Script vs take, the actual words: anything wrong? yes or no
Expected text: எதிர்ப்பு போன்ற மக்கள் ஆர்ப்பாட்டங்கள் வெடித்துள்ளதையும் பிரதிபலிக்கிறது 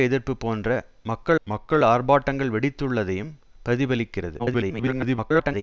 yes